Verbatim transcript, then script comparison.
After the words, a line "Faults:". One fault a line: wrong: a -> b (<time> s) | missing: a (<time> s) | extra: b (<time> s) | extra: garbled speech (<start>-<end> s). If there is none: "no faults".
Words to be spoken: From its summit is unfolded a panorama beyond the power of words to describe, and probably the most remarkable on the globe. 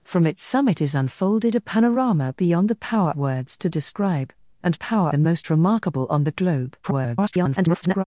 From its summit is unfolded a panorama beyond the power words to describe, and power the most remarkable on the globe. [garbled]
Faults:
missing: of (3.1 s)
wrong: probably -> power (4.7 s)
extra: garbled speech (6.8-8.0 s)